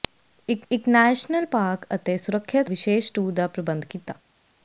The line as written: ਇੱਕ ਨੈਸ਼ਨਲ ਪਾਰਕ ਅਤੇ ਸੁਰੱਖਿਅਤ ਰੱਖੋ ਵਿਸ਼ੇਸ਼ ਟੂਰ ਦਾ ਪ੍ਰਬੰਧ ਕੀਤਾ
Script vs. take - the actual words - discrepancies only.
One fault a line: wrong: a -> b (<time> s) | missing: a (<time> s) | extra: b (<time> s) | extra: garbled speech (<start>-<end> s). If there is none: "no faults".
extra: ਇੱਕ (0.7 s)
missing: ਰੱਖੋ (2.7 s)